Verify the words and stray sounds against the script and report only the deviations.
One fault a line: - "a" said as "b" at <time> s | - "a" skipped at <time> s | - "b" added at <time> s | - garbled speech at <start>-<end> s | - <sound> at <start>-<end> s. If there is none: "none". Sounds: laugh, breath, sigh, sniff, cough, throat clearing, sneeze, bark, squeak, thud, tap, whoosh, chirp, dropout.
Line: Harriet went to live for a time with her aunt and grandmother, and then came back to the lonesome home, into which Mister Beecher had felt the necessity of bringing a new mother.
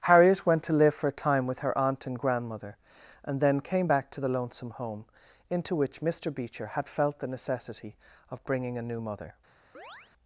- chirp at 9.7-10.1 s